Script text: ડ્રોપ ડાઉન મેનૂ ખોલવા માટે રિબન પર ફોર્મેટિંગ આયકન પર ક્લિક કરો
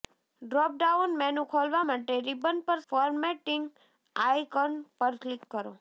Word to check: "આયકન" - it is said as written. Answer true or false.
true